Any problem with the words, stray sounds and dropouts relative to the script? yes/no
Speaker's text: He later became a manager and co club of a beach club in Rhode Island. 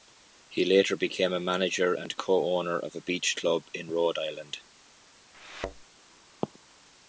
yes